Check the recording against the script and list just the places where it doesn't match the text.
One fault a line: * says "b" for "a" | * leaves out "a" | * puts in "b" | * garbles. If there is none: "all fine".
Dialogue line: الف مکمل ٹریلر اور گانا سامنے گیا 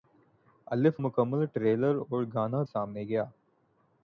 all fine